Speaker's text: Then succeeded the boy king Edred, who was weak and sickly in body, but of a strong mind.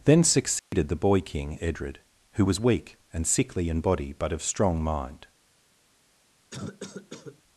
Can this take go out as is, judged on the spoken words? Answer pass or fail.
fail